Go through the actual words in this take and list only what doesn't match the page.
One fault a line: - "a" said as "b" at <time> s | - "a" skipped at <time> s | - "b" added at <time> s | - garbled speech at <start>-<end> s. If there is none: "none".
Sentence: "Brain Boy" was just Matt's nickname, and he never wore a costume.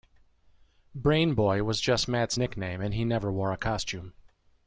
none